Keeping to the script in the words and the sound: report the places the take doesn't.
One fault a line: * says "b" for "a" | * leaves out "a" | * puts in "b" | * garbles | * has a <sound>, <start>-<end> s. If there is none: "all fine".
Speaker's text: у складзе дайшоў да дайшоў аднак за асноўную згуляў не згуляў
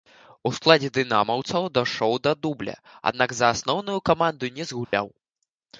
* puts in "дынамаўцаў"
* says "дубля" for "дайшоў"
* says "каманду" for "згуляў"
* has a dropout, 4.8-4.9 s